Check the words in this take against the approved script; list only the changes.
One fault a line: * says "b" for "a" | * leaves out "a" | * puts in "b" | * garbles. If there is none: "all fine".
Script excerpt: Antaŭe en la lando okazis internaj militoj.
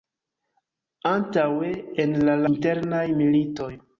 * leaves out "lando okazis"